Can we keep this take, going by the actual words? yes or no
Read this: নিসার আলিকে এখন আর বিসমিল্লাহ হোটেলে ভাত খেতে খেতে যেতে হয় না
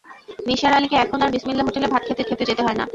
yes